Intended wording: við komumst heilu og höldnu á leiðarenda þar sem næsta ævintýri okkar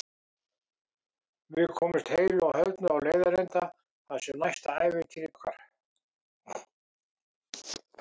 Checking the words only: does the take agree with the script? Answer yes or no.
yes